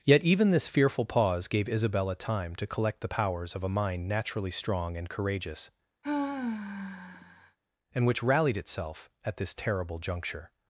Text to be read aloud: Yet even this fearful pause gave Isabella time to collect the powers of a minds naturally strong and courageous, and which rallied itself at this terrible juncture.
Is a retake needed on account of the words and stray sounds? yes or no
yes